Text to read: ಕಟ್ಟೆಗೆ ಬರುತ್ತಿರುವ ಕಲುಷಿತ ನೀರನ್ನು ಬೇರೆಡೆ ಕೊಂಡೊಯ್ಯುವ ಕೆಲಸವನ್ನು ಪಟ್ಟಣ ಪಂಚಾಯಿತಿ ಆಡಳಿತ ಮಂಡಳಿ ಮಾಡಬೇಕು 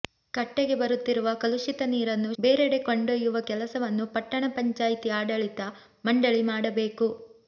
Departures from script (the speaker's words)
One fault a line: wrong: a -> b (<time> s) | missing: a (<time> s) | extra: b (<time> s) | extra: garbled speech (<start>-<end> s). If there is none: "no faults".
no faults